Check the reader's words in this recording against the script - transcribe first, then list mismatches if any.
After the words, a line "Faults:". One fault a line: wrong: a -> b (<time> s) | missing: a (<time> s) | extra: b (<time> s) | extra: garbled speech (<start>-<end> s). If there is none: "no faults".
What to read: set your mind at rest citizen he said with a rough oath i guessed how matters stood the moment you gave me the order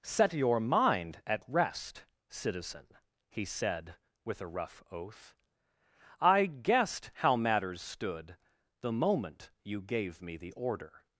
set your mind at rest citizen he said with a rough oath i guessed how matters stood the moment you gave me the order
Faults:
no faults